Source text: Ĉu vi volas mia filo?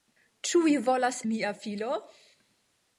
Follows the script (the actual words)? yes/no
yes